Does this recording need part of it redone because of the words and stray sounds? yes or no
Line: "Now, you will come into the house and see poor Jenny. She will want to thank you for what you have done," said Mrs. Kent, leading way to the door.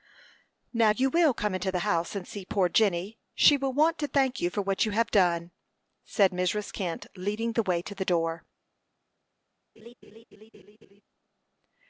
yes